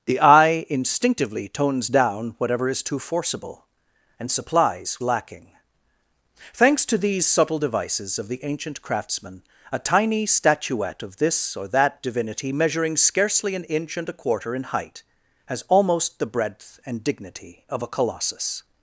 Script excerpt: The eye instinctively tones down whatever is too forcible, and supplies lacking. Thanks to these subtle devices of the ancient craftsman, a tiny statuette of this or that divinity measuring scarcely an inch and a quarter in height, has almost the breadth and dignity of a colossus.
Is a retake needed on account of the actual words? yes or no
no